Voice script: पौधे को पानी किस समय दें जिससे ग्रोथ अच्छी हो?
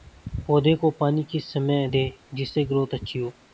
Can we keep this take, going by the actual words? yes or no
yes